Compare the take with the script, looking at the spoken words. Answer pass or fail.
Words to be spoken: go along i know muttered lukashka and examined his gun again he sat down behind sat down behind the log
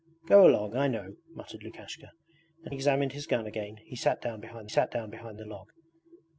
pass